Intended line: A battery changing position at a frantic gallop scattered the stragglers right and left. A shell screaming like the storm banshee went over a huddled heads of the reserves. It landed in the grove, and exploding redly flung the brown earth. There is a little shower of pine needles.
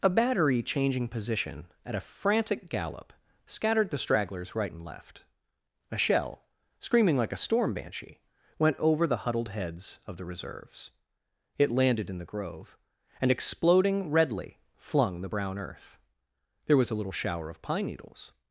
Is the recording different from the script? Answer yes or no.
yes